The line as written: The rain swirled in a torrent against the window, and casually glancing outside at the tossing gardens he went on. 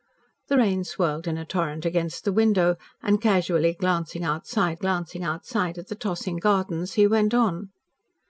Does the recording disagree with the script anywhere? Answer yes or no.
yes